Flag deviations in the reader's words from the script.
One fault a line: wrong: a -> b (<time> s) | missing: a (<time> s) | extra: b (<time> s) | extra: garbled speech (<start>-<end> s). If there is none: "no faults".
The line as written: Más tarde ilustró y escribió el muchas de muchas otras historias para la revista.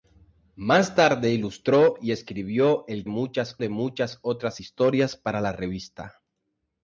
no faults